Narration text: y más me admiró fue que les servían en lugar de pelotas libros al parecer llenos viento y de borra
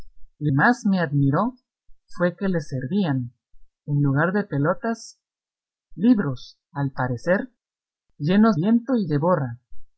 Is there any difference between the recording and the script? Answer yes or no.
no